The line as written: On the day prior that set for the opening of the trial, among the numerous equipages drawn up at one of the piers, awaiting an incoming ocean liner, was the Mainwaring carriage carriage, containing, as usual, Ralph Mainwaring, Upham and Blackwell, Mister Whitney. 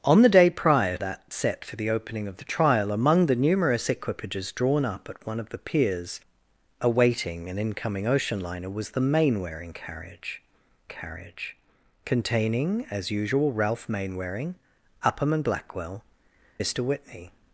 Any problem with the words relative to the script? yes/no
no